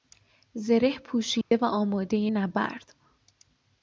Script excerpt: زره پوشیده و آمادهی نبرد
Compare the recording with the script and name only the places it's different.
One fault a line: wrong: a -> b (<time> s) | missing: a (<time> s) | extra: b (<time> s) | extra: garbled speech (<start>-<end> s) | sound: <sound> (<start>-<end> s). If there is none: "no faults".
sound: dropout (1.4-1.5 s)